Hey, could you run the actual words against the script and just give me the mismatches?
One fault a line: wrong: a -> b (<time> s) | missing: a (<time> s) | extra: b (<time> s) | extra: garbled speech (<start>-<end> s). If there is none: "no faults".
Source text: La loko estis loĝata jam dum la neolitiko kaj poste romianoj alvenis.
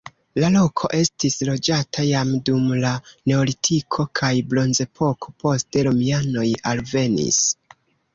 extra: bronzepoko (4.5 s)